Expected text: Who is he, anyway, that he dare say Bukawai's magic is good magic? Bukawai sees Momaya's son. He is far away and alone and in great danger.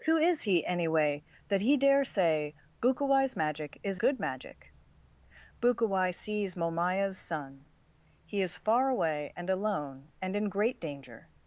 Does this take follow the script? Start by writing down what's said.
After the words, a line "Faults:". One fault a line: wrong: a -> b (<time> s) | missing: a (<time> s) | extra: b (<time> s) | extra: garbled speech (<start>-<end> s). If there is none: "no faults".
Who is he, anyway, that he dare say Bukawai's magic is good magic? Bukawai sees Momaya's son. He is far away and alone and in great danger.
Faults:
no faults